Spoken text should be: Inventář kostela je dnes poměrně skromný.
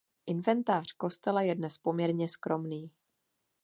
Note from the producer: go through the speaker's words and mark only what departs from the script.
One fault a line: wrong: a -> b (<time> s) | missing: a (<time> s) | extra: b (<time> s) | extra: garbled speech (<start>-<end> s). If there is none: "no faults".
no faults